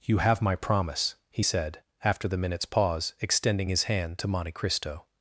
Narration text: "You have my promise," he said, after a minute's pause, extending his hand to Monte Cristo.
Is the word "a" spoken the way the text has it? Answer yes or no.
no